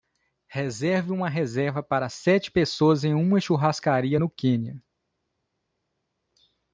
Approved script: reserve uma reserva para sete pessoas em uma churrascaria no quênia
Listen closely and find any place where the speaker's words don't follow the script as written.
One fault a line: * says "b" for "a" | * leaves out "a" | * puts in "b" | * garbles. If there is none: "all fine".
all fine